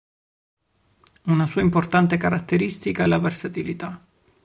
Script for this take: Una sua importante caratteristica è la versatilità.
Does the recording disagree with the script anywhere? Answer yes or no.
no